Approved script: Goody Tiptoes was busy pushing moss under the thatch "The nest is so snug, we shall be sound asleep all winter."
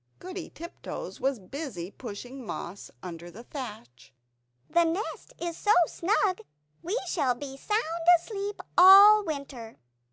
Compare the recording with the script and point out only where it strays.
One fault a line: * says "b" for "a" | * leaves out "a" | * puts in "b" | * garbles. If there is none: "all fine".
all fine